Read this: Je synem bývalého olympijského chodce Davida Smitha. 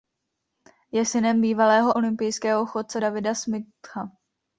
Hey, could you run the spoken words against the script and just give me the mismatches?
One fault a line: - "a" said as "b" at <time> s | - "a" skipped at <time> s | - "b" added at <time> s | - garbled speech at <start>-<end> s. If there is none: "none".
none